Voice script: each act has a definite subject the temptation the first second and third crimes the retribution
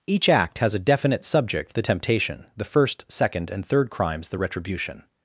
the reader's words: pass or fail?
pass